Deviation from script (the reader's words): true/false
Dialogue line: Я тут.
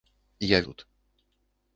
false